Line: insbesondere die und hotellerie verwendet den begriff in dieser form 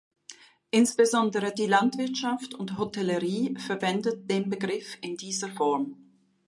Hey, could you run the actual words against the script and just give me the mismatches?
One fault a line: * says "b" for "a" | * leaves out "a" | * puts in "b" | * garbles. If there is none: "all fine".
* puts in "landwirtschaft"